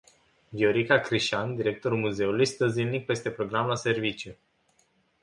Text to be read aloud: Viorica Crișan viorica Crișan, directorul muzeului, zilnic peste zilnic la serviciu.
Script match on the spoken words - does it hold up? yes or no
no